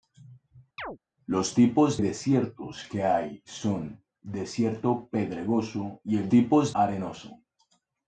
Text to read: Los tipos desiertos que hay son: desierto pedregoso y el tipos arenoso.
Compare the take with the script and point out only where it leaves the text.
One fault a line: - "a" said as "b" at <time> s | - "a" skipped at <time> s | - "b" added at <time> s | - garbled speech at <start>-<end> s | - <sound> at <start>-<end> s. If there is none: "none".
- chirp at 0.8-1.0 s